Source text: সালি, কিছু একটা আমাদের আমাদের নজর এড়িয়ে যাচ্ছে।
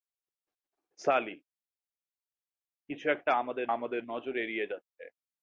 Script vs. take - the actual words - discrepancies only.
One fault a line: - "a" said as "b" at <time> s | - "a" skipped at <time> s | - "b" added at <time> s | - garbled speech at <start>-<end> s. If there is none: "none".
none